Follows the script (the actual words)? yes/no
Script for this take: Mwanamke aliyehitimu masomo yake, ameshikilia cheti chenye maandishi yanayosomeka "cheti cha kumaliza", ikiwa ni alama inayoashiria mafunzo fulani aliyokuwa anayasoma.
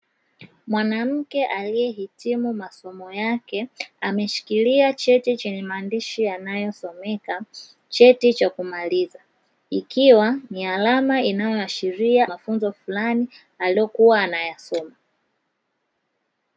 yes